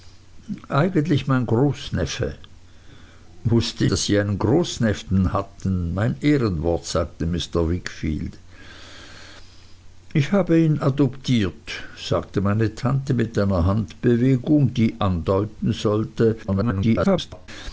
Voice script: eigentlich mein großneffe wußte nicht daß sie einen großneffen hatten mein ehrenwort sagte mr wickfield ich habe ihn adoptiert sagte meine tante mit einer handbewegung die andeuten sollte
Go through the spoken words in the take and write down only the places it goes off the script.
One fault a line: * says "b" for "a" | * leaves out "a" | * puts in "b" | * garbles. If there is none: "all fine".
* leaves out "nicht"
* garbles